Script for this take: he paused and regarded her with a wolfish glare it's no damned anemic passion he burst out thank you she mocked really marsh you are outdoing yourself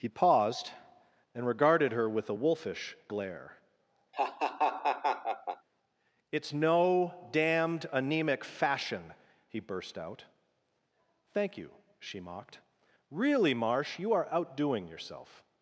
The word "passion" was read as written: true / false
false